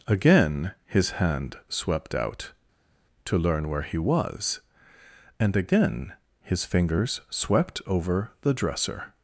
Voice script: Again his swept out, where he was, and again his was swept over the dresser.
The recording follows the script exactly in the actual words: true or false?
false